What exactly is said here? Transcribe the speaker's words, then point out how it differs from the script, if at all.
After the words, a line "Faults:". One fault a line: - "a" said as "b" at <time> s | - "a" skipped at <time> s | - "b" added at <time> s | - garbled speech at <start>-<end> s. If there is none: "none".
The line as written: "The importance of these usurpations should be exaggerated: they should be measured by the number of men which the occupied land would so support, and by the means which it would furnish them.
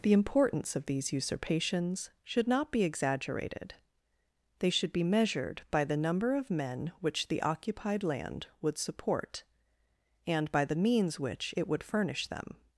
"The importance of these usurpations should not be exaggerated: they should be measured by the number of men which the occupied land would support, and by the means which it would furnish them.
Faults:
- "not" added at 2.5 s
- "so" skipped at 8.8 s